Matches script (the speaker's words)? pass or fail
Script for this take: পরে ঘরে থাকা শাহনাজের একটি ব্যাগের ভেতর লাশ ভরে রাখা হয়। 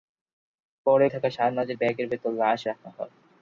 fail